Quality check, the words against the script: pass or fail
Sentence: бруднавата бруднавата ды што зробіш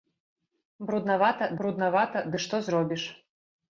pass